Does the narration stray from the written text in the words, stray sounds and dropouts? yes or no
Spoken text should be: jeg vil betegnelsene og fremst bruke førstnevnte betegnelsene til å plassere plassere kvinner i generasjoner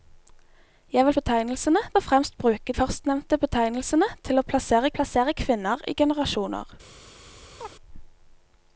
yes